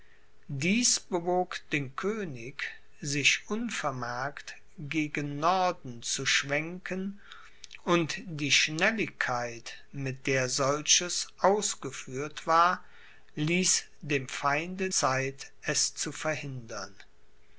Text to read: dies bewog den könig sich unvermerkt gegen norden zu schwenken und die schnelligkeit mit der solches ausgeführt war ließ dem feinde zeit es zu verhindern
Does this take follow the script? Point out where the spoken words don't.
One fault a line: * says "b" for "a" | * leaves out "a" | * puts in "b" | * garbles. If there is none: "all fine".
all fine